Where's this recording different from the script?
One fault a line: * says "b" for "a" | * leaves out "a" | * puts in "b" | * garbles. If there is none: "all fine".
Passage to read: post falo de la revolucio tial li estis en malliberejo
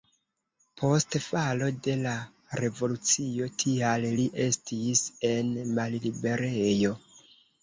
all fine